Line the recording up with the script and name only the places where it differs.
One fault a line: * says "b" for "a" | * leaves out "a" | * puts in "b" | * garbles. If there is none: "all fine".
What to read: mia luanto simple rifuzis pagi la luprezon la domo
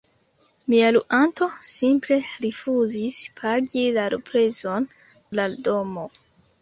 all fine